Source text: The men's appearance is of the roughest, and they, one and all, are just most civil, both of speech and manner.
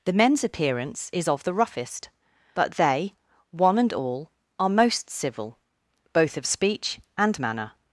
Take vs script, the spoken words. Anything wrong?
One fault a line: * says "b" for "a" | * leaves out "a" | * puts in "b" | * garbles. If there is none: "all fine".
* says "but" for "and"
* leaves out "just"